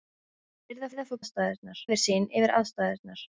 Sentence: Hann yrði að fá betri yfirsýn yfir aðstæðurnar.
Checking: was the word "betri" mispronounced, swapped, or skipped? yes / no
yes